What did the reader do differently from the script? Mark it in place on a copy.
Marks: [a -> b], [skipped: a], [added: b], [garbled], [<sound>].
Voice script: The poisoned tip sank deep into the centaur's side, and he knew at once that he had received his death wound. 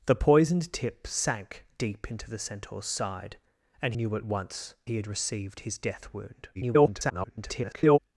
The poisoned tip sank deep into the centaur's side, and [skipped: he] knew at once [skipped: that] he had received his death wound. [garbled]